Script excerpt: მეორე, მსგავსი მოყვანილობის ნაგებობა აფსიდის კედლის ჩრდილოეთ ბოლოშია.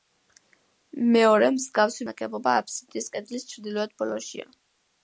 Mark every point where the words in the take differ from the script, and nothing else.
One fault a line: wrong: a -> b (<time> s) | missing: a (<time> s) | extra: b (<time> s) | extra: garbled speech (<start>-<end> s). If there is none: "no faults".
missing: მოყვანილობის (2.1 s)